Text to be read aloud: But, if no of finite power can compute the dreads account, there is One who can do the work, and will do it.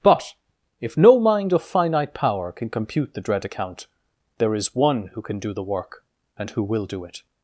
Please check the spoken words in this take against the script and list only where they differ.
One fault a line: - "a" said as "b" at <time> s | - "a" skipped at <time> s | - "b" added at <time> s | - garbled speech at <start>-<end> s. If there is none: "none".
- "mind" added at 1.2 s
- "dreads" said as "dread" at 3.2 s
- "who" added at 6.5 s